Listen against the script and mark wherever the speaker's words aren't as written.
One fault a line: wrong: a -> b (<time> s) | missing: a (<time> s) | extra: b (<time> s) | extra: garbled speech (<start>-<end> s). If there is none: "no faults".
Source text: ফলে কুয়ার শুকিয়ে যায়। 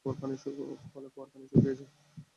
extra: পানি (1.3 s)